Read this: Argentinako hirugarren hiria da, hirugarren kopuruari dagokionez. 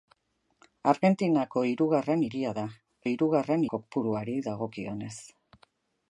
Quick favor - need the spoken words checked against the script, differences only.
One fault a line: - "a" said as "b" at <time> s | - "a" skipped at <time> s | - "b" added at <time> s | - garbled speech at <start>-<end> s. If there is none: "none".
none